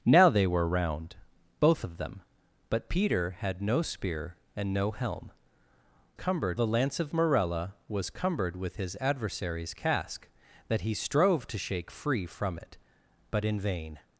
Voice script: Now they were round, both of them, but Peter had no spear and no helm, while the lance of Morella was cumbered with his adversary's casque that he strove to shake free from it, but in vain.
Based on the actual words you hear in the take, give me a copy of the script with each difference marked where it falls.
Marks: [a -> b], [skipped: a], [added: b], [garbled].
Now they were round, both of them, but Peter had no spear and no helm, [while -> cumbered] the lance of Morella was cumbered with his adversary's casque that he strove to shake free from it, but in vain.